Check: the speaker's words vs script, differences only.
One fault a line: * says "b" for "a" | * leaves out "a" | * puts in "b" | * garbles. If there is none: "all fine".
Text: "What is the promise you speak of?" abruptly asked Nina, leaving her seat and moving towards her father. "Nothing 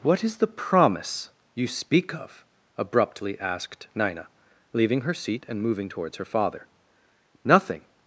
all fine